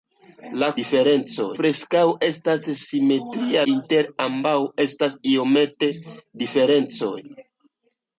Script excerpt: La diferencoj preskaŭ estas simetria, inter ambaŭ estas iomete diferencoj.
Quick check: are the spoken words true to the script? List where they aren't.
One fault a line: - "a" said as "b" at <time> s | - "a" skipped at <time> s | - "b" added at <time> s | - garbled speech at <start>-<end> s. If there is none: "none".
none